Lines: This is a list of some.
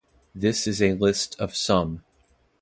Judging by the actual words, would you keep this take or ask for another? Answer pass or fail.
pass